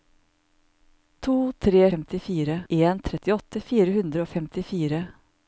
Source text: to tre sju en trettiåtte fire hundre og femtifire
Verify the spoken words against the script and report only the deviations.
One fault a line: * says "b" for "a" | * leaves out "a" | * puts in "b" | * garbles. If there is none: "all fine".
* says "femtifire" for "sju"